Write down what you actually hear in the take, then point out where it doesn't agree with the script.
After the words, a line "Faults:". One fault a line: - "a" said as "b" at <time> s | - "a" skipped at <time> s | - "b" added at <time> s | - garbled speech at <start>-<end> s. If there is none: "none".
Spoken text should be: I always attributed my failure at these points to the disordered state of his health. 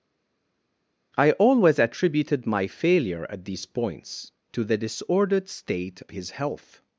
I always attributed my failure at these points to the disordered state his health.
Faults:
- "of" skipped at 6.0 s